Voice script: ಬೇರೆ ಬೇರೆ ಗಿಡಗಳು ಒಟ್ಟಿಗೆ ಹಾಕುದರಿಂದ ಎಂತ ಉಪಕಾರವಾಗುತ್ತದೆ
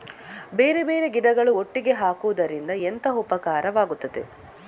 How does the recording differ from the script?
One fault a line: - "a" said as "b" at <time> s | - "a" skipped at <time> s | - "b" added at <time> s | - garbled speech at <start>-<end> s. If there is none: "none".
none